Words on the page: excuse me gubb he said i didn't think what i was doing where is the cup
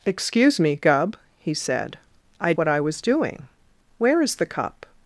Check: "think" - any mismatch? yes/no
yes